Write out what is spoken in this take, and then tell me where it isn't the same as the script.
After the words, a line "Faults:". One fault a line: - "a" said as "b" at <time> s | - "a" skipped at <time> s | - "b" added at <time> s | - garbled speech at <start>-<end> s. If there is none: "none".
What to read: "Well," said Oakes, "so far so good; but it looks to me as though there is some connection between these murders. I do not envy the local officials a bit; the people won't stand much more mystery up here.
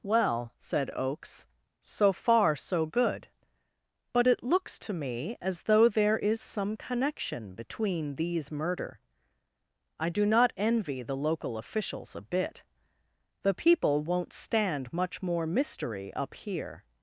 "Well," said Oakes, "so far so good; but it looks to me as though there is some connection between these murder. I do not envy the local officials a bit; the people won't stand much more mystery up here.
Faults:
- "murders" said as "murder" at 8.5 s